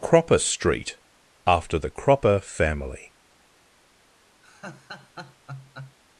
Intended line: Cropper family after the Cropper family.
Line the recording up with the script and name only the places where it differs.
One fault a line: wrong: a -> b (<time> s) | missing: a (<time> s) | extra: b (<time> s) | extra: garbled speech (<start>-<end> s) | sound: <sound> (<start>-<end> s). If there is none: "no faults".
wrong: family -> street (0.4 s)
sound: laugh (4.4-6.0 s)